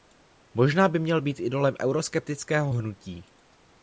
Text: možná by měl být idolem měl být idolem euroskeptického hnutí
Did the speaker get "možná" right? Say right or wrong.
right